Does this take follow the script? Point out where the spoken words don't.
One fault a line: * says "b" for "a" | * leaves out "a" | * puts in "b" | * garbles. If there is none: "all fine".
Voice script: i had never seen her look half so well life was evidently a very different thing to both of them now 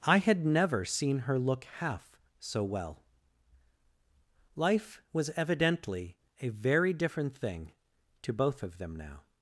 all fine